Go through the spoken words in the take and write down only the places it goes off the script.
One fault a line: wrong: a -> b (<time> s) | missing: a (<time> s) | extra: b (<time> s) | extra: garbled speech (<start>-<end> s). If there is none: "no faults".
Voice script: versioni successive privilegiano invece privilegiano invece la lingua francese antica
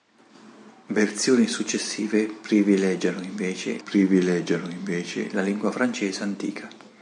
no faults